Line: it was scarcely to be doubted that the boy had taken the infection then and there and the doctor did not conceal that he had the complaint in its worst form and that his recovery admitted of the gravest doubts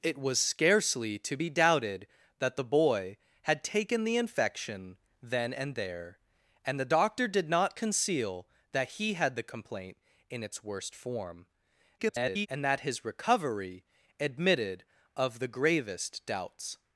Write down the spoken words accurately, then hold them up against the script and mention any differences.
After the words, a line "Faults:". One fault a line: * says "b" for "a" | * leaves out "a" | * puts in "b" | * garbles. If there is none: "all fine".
it was scarcely to be doubted that the boy had taken the infection then and there and the doctor did not conceal that he had the complaint in its worst form [garbled] and that his recovery admitted of the gravest doubts
Faults:
* garbles